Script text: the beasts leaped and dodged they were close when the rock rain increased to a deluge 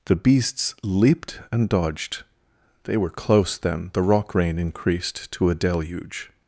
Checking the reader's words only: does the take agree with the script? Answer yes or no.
no